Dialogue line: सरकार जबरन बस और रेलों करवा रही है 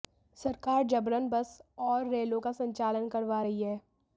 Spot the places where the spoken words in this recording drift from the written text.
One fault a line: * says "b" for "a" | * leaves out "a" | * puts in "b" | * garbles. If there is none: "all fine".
* puts in "का संचालन"